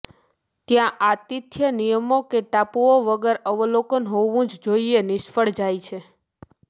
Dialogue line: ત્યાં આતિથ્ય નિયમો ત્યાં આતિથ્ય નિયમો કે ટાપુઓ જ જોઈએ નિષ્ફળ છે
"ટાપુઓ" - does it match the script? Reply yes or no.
no